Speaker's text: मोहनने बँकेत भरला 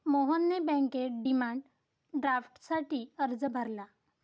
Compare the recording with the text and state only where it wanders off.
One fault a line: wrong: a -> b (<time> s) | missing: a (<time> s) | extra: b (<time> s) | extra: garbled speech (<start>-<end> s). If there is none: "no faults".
extra: डिमांड ड्राफ्टसाठी अर्ज (1.2 s)